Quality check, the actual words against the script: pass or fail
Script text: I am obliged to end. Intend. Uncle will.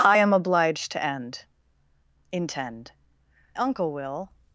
pass